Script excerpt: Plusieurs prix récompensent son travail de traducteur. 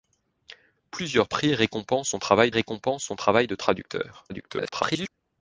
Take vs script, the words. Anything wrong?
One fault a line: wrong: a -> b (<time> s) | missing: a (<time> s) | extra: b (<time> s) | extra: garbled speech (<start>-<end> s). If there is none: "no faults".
extra: récompensent son travail (2.5 s)
extra: garbled speech (4.3-5.1 s)